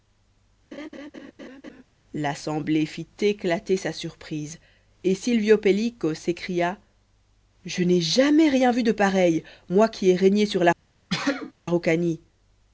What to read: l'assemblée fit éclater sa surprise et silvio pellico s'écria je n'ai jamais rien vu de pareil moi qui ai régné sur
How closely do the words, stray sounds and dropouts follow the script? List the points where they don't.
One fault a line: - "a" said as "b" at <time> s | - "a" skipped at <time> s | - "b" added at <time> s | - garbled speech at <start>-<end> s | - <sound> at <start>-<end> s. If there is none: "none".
- laugh at 0.7-1.8 s
- sneeze at 11.1-11.5 s